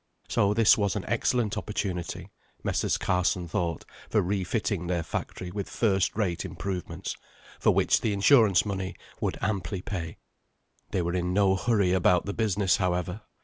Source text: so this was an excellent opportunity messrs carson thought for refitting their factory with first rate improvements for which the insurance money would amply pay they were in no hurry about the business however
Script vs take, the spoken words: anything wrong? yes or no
no